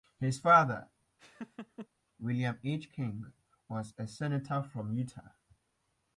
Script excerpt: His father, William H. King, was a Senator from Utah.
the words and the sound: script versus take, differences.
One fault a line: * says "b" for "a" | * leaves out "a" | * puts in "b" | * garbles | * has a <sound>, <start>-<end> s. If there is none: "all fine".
* has a laugh, 1.2-1.9 s